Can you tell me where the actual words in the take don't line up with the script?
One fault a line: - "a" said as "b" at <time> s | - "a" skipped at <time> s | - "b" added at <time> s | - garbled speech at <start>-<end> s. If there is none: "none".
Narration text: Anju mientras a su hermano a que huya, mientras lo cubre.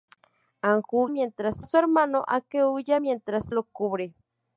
none